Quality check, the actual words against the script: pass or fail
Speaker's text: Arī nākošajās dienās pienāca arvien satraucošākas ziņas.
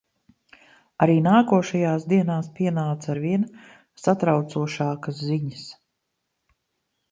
pass